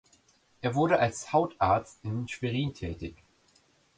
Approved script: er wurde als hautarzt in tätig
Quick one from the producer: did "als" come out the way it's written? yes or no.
yes